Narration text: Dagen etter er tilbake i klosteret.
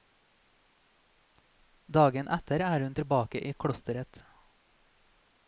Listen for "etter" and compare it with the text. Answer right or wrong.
right